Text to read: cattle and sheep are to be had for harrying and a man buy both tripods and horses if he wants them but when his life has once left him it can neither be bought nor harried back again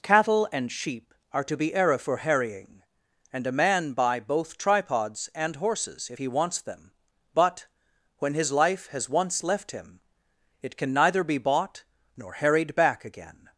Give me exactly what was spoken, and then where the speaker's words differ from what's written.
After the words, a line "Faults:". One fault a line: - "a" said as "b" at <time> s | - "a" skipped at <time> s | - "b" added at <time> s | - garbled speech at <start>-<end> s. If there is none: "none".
cattle and sheep are to be era for harrying and a man buy both tripods and horses if he wants them but when his life has once left him it can neither be bought nor harried back again
Faults:
- "had" said as "era" at 1.7 s